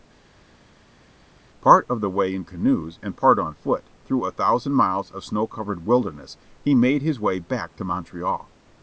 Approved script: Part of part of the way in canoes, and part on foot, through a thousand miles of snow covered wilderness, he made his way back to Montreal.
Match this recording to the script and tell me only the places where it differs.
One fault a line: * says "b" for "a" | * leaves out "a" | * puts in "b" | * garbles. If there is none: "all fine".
* leaves out "part of"